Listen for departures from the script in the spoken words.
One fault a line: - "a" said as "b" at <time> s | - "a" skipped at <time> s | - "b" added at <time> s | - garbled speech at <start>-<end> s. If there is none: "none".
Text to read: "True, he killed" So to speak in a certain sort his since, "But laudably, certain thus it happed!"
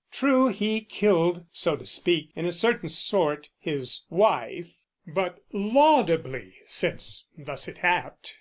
- "since" said as "wife" at 4.1 s
- "certain" said as "since" at 6.7 s